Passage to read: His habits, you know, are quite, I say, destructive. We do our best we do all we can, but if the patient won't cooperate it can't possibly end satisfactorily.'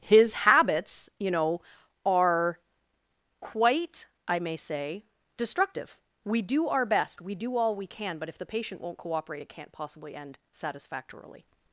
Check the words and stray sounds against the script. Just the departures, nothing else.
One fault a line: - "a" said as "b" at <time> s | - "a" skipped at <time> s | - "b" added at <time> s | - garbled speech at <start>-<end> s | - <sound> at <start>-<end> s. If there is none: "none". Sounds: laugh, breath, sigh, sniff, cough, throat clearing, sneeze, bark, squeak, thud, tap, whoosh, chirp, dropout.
- "may" added at 4.4 s